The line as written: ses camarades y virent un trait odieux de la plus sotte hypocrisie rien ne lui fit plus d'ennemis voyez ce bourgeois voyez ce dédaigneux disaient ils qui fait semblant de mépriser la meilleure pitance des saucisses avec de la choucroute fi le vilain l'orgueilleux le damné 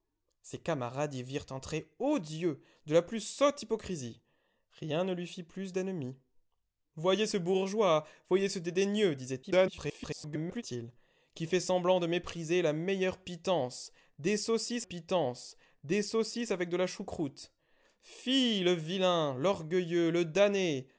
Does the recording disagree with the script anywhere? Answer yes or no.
yes